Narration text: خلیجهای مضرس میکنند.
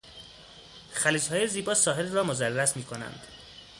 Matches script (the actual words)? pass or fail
fail